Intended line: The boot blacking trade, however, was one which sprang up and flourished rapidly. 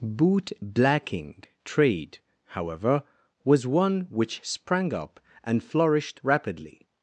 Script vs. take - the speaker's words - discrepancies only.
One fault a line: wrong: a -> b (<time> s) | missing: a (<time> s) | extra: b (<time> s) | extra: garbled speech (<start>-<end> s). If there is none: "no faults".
missing: The (0.0 s)